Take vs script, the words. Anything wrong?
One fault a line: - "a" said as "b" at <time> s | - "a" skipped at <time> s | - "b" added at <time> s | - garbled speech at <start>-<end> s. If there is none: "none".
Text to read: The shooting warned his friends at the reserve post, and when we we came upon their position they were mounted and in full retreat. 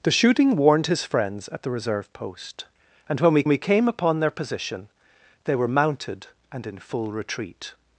none